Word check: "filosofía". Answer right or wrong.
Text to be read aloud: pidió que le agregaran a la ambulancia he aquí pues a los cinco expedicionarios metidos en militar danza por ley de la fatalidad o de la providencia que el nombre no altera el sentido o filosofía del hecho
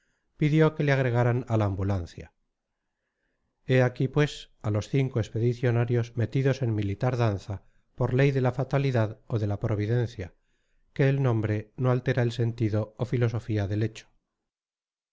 right